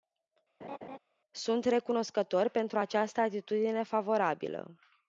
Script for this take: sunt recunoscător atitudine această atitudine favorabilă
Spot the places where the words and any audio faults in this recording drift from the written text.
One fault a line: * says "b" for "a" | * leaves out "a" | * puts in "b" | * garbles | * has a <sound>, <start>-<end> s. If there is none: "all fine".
* has a laugh, 0.6-1.0 s
* says "pentru" for "atitudine"